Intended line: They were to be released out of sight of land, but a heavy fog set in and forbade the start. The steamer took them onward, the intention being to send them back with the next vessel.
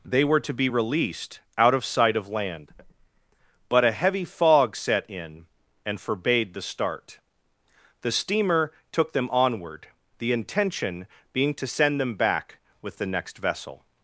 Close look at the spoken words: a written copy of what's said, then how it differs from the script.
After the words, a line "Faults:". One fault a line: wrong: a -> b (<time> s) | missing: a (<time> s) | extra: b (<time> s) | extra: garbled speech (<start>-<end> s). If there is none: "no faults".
They were to be released out of sight of land, but a heavy fog set in and forbade the start. The steamer took them onward, the intention being to send them back with the next vessel.
Faults:
no faults